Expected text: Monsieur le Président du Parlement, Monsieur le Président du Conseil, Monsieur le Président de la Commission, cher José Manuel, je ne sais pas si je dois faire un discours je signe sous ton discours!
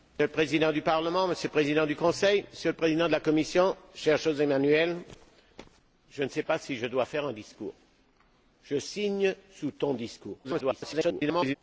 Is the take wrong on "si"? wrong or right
right